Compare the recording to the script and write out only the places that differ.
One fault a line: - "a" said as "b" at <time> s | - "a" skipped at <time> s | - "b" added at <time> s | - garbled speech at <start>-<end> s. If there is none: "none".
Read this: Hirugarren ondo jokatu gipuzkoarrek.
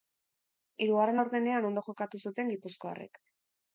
- "laurdenean" added at 1.2 s
- "zuten" added at 2.3 s